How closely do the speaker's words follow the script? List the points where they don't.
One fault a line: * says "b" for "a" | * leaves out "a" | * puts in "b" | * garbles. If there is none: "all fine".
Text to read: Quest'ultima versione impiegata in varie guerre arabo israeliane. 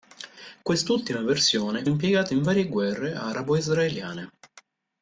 all fine